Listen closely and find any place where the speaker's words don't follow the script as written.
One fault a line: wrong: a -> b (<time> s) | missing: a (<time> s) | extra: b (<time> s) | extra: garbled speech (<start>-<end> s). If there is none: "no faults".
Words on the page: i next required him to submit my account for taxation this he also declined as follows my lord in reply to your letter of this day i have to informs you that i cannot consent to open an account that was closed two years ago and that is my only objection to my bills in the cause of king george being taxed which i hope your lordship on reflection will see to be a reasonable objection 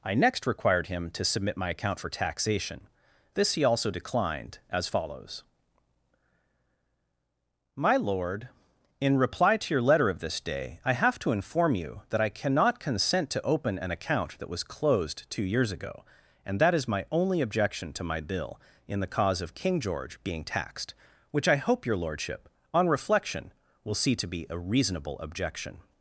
wrong: informs -> inform (11.3 s)
wrong: bills -> bill (18.2 s)